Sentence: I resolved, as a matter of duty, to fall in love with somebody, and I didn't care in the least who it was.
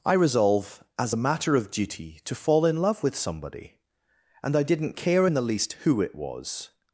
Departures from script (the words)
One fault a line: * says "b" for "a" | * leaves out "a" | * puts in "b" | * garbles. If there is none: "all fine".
* says "resolve" for "resolved"